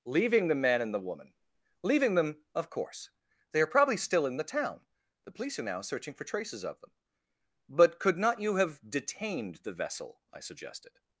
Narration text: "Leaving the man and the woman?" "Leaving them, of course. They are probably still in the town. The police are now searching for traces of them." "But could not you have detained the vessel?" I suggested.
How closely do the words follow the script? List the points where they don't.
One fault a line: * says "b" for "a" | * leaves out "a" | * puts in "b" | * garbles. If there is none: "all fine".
all fine